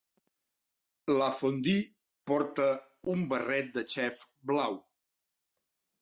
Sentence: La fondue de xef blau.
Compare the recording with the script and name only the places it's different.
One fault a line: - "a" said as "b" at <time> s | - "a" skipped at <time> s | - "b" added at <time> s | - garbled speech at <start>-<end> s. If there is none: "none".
- "porta un barret" added at 2.3 s